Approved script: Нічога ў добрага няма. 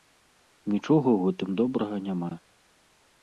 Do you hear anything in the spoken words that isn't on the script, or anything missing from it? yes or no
yes